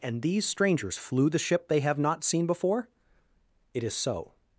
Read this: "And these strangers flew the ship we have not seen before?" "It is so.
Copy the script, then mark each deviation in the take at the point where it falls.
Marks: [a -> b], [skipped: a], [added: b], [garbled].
"And these strangers flew the ship [we -> they] have not seen before?" "It is so.